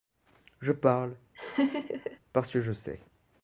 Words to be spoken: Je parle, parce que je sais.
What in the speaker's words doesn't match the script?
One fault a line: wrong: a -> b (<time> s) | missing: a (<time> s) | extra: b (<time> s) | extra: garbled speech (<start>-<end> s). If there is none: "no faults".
no faults